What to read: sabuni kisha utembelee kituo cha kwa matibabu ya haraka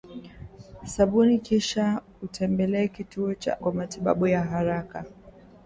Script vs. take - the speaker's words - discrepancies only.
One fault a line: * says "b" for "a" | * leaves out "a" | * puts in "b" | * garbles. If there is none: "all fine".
all fine